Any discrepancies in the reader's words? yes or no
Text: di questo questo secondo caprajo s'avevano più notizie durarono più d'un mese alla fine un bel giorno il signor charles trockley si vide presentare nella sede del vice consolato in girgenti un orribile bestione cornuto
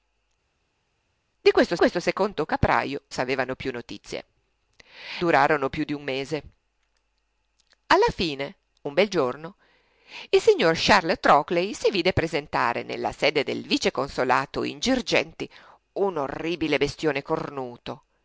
no